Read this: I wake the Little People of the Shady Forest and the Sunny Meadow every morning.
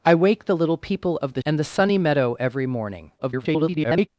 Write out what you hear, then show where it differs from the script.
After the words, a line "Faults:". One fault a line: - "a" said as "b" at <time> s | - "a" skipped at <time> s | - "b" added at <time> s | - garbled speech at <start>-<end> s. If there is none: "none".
I wake the Little People of the And the Sunny Meadow every morning. [garbled]
Faults:
- "Shady Forest" skipped at 1.4 s
- garbled speech at 3.2-4.1 s